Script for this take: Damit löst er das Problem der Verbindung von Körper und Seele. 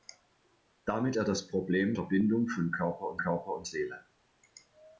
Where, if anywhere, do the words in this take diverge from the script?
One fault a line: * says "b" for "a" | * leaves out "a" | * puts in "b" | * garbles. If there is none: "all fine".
* leaves out "löst"
* leaves out "der"
* puts in "Körper und"